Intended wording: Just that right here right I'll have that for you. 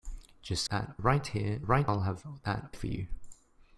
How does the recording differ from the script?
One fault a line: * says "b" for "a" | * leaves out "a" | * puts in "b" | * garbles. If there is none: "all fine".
all fine